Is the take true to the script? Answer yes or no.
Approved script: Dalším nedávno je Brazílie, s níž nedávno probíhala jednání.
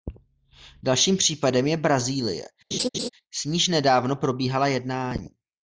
no